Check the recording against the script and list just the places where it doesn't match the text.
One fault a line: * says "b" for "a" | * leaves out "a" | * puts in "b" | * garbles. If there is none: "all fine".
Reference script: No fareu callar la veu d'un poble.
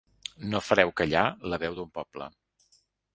all fine